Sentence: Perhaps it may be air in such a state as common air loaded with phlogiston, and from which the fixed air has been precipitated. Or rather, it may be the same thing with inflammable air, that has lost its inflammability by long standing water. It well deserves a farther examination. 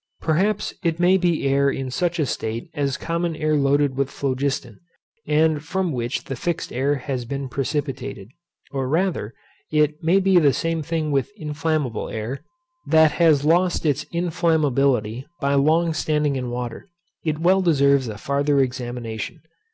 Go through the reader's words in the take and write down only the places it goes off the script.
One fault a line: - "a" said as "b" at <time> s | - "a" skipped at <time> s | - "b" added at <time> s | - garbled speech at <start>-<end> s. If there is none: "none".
- "in" added at 16.4 s